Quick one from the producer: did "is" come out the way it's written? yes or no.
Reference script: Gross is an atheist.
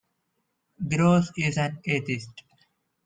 yes